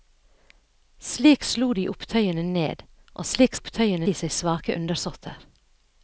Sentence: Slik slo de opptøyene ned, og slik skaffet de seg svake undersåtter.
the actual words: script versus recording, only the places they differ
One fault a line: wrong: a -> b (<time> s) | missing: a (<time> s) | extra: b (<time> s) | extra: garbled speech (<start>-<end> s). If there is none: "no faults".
wrong: skaffet -> opptøyene (3.6 s)